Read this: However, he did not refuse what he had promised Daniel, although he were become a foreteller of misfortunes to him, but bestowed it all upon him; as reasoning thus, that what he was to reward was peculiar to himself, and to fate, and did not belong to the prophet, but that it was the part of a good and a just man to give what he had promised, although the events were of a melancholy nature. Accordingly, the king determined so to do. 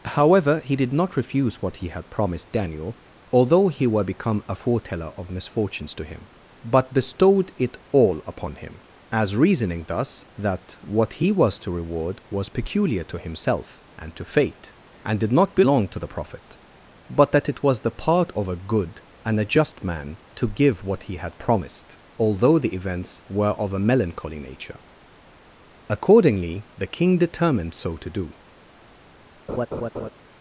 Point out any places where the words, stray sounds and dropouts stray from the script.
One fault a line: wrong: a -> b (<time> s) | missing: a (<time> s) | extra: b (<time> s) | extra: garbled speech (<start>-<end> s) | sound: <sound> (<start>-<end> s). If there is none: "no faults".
sound: laugh (29.5-30.1 s)